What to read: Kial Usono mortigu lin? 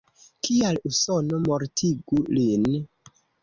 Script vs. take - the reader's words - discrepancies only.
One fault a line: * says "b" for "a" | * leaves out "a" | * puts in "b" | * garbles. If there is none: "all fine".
all fine